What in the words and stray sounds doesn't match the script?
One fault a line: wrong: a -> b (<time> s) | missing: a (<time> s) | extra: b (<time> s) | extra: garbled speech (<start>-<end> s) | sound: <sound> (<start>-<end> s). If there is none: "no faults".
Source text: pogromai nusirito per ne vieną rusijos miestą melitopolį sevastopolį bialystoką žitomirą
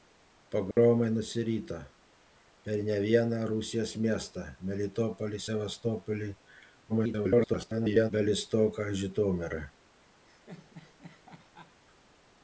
sound: dropout (0.7-0.8 s)
extra: garbled speech (6.9-8.1 s)
sound: laugh (10.3-11.8 s)